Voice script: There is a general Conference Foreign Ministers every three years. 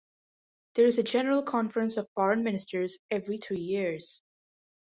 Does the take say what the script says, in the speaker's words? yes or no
no